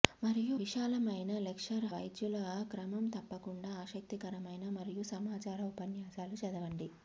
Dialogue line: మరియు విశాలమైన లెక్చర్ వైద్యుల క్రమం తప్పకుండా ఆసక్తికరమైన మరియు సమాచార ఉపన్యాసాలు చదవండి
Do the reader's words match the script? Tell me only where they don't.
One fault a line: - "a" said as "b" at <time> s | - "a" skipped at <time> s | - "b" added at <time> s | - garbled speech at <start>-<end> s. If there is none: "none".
none